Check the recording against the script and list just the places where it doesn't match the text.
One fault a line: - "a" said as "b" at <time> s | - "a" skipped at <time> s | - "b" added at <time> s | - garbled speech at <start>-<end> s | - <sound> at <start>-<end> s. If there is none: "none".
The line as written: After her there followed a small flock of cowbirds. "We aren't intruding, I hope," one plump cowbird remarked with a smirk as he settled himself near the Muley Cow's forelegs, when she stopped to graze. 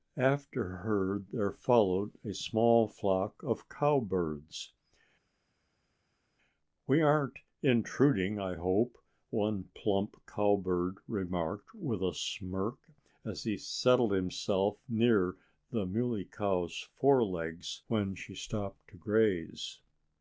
none